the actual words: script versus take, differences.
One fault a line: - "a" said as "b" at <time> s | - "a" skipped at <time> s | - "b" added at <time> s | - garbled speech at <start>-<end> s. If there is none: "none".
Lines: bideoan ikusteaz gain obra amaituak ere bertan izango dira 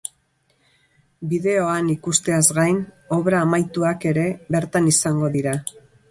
none